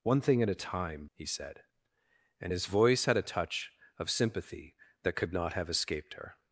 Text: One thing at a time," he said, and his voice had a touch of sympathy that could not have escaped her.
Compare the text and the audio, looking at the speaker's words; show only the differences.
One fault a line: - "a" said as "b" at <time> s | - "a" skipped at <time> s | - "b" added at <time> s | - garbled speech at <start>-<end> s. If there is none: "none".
none